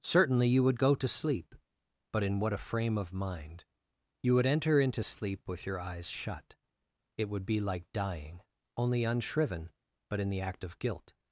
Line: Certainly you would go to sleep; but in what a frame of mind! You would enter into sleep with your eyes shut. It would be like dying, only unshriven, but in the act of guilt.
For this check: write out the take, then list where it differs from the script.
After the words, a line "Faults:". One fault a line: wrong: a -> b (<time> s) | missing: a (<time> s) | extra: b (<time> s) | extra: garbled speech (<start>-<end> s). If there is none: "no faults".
Certainly you would go to sleep; but in what a frame of mind! You would enter into sleep with your eyes shut. It would be like dying, only unshriven, but in the act of guilt.
Faults:
no faults